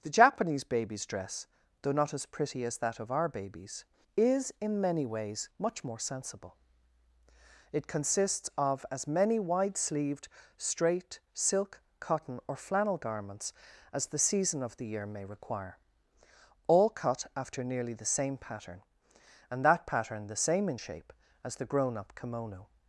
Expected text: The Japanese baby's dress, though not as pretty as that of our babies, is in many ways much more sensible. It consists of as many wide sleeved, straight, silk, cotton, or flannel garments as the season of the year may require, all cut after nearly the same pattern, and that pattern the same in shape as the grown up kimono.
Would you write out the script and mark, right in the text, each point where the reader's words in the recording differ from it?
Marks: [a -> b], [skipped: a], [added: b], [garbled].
The Japanese baby's dress, though not as pretty as that of our babies, is in many ways much more sensible. It consists of as many wide sleeved, straight, silk, cotton, or flannel garments as the season of the year may require, all cut after nearly the same pattern, and that pattern the same in shape as the grown up kimono.